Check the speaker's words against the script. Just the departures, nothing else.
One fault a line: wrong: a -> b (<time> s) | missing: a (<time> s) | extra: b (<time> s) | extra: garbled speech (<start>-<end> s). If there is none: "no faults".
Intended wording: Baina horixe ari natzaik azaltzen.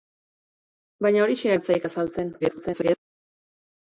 missing: ari (1.5 s)
extra: garbled speech (2.4-3.0 s)